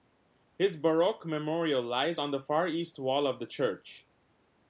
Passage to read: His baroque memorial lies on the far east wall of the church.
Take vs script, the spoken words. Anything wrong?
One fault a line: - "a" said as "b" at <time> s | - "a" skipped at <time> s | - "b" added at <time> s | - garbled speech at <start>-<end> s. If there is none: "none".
none